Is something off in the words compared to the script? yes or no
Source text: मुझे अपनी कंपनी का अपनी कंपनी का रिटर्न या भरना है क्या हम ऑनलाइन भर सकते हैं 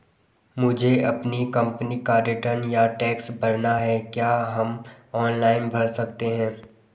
yes